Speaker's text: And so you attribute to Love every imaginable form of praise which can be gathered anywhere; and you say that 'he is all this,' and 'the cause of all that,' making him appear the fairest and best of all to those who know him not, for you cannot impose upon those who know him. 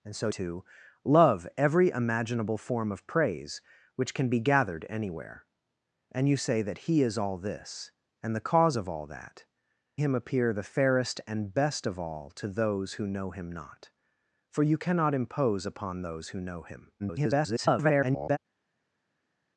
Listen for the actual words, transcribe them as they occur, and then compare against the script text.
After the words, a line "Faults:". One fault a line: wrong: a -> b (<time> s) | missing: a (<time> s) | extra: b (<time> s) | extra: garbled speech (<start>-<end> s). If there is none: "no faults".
And so to Love every imaginable form of praise which can be gathered anywhere; and you say that 'he is all this,' and 'the cause of all that,' him appear the fairest and best of all to those who know him not, for you cannot impose upon those who know him. [garbled]
Faults:
missing: you attribute (0.3 s)
missing: making (9.4 s)
extra: garbled speech (17.0-18.4 s)